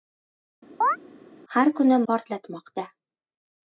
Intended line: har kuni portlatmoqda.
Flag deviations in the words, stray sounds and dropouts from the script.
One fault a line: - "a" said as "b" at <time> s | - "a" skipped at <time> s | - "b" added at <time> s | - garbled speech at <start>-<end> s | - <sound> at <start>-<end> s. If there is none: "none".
- chirp at 0.8-1.0 s